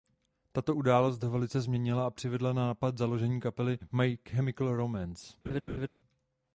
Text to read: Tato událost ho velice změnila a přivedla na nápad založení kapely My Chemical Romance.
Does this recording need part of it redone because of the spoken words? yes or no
no